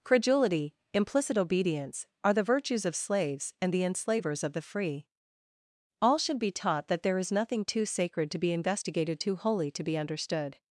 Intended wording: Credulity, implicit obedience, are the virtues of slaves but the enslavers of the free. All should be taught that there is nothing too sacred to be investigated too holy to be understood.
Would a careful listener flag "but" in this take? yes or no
yes